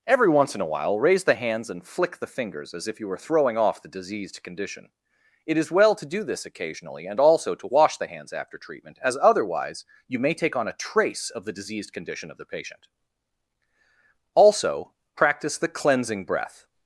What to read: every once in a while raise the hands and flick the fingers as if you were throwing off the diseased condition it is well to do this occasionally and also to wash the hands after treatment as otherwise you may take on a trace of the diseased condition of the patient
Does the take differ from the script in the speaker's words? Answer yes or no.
yes